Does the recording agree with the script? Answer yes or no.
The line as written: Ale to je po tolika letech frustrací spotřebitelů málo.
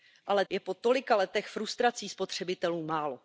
no